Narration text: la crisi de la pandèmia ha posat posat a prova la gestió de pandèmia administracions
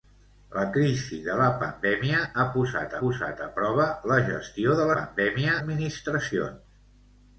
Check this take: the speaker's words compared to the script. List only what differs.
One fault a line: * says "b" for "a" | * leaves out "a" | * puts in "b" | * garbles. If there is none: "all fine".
all fine